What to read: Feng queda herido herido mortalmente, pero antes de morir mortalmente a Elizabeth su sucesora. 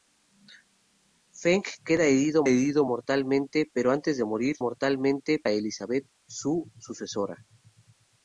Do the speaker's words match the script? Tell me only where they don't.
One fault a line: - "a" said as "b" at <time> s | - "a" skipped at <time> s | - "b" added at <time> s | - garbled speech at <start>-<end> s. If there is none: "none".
none